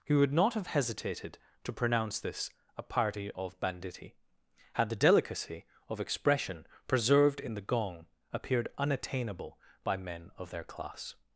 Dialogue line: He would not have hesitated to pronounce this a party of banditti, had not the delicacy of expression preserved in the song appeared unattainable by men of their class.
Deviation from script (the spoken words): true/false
true